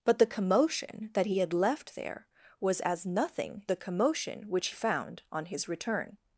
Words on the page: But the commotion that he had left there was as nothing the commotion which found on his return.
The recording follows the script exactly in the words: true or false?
true